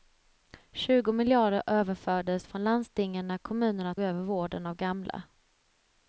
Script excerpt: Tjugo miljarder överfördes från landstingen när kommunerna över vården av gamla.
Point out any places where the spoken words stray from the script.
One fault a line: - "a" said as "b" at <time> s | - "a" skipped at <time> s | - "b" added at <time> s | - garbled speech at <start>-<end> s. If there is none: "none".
none